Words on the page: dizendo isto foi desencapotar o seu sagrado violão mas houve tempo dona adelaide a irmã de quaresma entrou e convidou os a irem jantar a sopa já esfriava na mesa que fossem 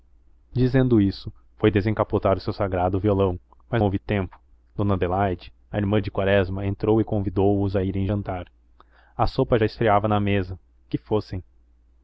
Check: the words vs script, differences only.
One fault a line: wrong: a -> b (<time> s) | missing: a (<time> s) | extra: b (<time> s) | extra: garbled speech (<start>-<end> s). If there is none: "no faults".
no faults